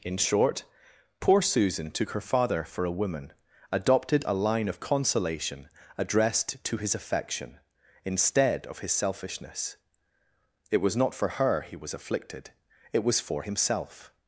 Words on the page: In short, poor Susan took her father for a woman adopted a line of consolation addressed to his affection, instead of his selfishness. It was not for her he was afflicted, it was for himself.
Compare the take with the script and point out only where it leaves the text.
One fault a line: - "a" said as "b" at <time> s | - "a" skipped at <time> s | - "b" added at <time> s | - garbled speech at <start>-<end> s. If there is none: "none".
none